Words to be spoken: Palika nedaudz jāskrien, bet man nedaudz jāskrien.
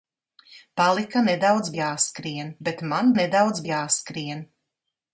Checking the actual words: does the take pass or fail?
pass